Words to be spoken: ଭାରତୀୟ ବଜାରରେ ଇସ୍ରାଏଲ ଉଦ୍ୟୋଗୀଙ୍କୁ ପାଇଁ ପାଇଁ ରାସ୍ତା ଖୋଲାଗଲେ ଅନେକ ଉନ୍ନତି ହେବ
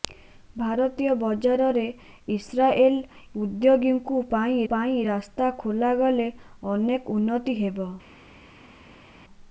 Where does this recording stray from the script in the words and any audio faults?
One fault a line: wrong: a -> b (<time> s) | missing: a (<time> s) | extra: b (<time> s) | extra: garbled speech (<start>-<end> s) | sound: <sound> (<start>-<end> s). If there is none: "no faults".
no faults